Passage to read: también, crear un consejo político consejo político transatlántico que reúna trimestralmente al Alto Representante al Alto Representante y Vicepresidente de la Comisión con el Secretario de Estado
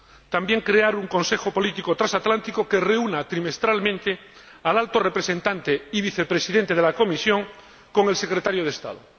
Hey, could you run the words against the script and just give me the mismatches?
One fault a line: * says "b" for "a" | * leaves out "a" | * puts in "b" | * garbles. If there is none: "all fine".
* leaves out "consejo político"
* leaves out "al Alto Representante"